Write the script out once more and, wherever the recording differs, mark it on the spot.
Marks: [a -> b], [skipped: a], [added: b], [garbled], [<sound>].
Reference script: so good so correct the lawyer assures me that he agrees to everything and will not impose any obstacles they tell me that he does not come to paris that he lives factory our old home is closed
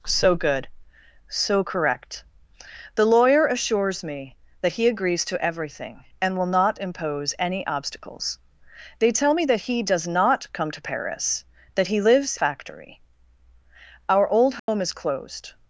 so good so correct the lawyer assures me that he agrees to everything and will not impose any obstacles they tell me that he does not come to paris that he lives factory our old home [dropout] is closed